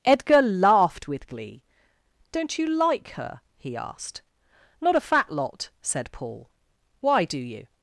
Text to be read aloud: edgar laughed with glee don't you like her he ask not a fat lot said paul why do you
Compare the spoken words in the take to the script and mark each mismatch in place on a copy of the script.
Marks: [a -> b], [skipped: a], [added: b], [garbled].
edgar laughed with glee don't you like her he [ask -> asked] not a fat lot said paul why do you